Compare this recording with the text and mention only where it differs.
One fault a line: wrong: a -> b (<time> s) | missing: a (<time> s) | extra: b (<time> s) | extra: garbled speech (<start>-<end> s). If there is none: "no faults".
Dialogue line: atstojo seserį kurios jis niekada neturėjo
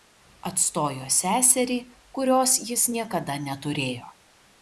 no faults